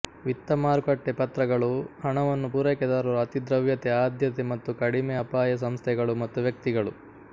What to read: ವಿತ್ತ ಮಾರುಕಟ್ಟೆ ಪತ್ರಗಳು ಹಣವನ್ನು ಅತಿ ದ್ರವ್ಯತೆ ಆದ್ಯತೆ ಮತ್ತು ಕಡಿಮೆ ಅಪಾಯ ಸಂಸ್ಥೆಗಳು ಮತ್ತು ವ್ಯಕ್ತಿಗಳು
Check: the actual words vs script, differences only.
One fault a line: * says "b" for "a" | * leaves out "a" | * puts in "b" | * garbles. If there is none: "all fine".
* puts in "ಪೂರೈಕೆದಾರರು"